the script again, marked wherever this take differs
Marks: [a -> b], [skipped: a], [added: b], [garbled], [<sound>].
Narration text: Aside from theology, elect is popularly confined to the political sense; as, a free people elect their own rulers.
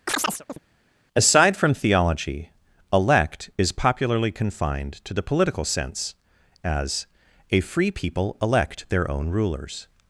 [chirp] Aside from theology, elect is popularly confined to the political sense; as, a free people elect their own rulers.